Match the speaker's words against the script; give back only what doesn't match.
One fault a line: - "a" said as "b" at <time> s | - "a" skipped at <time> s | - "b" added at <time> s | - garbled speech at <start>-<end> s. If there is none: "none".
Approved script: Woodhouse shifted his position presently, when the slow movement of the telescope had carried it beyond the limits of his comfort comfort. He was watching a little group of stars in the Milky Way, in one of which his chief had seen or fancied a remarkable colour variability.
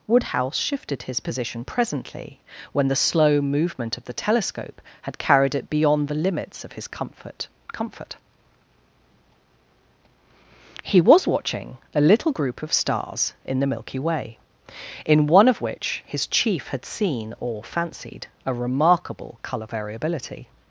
none